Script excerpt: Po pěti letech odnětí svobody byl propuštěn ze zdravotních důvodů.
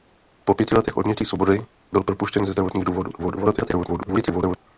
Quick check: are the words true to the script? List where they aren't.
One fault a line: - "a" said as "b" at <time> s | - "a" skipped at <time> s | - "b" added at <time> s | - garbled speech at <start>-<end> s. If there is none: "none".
- garbled speech at 3.2-4.6 s